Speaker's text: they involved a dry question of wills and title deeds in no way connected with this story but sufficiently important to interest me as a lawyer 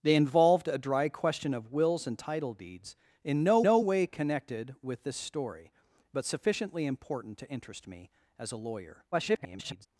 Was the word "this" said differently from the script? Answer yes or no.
no